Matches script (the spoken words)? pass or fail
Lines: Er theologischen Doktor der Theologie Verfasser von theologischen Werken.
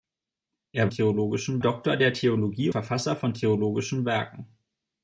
pass